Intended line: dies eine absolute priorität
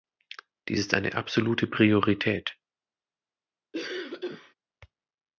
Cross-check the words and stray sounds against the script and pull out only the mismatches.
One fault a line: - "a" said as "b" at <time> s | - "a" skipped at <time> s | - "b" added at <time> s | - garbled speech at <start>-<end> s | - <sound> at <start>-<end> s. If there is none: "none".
- "ist" added at 0.8 s
- cough at 3.7-4.5 s